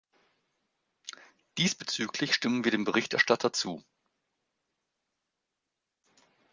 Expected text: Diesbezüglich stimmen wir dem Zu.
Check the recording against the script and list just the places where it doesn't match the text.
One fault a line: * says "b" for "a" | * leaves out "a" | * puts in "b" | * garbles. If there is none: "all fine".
* puts in "Berichterstatter"